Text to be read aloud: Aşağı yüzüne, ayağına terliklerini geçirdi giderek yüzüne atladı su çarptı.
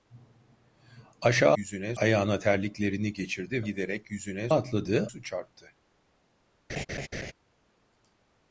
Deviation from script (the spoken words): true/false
false